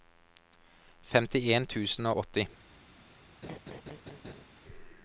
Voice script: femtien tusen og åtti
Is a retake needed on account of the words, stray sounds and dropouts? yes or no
yes